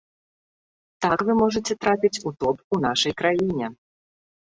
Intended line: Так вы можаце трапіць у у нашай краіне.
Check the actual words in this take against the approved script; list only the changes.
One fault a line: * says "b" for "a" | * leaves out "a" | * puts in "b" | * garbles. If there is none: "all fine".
* puts in "топ"